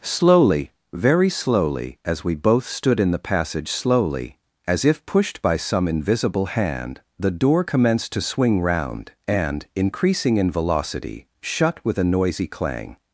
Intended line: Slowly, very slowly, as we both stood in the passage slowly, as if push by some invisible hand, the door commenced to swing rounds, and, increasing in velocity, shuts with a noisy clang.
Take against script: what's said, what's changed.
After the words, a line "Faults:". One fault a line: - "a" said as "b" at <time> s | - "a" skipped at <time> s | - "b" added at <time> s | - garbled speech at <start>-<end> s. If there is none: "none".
Slowly, very slowly, as we both stood in the passage slowly, as if pushed by some invisible hand, the door commenced to swing round, and, increasing in velocity, shut with a noisy clang.
Faults:
- "push" said as "pushed" at 5.0 s
- "rounds" said as "round" at 8.6 s
- "shuts" said as "shut" at 11.4 s